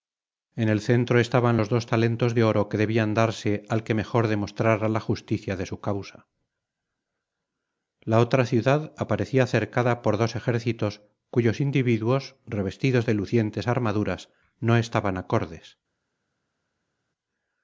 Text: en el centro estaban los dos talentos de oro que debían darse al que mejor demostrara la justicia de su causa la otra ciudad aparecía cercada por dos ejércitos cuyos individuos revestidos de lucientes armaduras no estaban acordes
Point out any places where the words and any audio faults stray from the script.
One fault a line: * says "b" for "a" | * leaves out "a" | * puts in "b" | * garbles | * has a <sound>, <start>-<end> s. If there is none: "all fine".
all fine